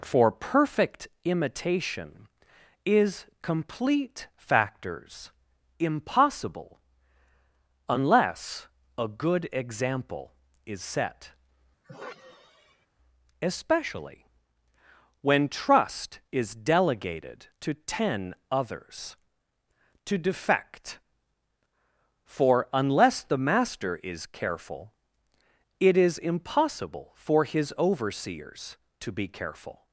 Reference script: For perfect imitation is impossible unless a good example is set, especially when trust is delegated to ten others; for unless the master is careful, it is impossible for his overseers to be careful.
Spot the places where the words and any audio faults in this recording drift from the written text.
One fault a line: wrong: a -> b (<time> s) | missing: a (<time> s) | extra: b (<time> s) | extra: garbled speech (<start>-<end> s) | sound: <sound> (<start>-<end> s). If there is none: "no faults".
extra: complete factors (3.4 s)
sound: sigh (11.8-12.9 s)
extra: to defect (20.0 s)